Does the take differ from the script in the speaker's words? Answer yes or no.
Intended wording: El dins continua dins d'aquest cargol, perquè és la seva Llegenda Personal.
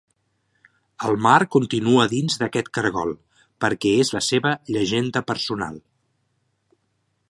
yes